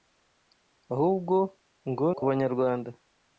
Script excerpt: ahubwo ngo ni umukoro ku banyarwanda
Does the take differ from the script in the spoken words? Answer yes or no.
yes